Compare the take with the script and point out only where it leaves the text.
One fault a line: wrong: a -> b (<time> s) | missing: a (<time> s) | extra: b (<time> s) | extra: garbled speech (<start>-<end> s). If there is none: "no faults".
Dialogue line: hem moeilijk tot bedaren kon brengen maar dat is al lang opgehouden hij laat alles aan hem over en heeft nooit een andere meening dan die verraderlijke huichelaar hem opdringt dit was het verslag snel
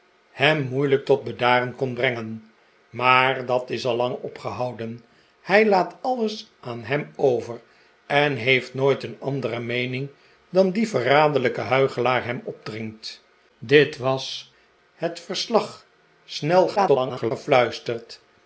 extra: garbled speech (16.8-17.3 s)